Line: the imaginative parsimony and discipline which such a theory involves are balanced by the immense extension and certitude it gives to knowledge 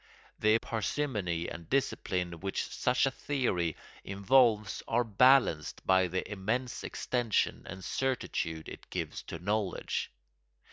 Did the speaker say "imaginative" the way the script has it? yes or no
no